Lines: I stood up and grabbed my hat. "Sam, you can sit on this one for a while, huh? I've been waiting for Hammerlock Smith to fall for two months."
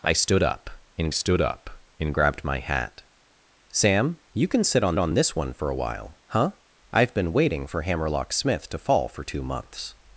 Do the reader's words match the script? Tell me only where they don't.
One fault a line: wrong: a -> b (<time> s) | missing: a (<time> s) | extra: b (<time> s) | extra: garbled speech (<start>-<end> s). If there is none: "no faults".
extra: stood up and (1.1 s)
extra: on (5.0 s)